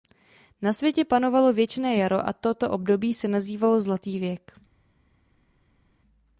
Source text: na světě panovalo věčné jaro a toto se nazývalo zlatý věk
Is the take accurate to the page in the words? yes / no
no